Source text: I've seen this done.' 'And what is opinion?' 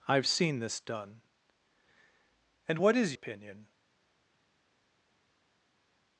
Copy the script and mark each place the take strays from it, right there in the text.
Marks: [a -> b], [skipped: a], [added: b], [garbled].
I've seen this done.' 'And what is opinion?'